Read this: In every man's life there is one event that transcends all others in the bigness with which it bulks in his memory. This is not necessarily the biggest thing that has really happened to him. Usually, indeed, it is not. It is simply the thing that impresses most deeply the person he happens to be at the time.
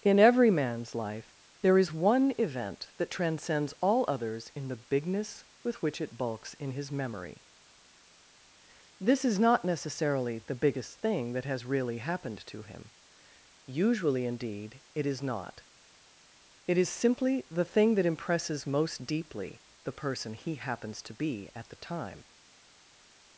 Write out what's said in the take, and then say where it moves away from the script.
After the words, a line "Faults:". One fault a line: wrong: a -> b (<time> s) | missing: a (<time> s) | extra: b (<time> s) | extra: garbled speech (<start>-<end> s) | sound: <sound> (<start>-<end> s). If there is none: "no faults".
In every man's life there is one event that transcends all others in the bigness with which it bulks in his memory. This is not necessarily the biggest thing that has really happened to him. Usually, indeed, it is not. It is simply the thing that impresses most deeply the person he happens to be at the time.
Faults:
no faults